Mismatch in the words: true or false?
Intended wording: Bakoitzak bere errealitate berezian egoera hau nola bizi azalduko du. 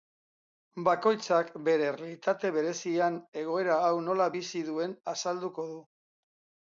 true